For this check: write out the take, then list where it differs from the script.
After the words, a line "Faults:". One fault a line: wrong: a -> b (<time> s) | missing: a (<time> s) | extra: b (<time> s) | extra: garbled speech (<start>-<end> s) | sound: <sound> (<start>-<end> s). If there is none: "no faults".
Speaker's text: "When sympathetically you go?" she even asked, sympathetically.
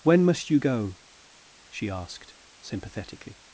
"When must you go?" she asked, sympathetically.
Faults:
wrong: sympathetically -> must (0.2 s)
missing: even (1.9 s)